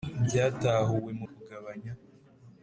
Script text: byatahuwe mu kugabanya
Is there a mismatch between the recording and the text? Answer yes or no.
no